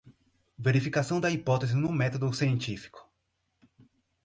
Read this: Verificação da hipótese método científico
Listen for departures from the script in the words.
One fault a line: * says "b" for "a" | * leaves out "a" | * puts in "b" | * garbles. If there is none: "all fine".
* puts in "no"